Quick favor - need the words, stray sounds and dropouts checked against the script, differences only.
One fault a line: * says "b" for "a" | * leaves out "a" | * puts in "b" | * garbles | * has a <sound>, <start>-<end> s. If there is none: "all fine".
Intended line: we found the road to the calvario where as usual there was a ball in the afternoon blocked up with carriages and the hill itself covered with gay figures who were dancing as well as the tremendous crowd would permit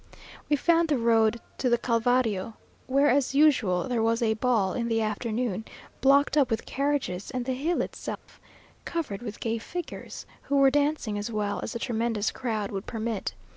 * has a dropout, 8.1-8.3 s